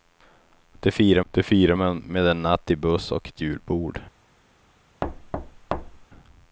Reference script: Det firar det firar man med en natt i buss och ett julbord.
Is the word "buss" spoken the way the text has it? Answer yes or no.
yes